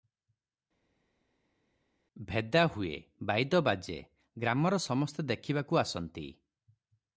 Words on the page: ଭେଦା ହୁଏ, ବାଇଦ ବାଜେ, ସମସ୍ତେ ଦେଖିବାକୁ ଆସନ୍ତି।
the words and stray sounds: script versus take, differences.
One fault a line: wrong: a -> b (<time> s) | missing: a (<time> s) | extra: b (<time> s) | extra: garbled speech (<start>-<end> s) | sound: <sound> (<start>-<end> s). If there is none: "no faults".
extra: ଗ୍ରାମର (4.4 s)